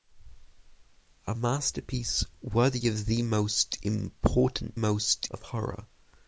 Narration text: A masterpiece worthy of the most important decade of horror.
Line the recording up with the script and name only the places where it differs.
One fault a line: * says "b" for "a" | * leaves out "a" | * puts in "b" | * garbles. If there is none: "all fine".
* says "most" for "decade"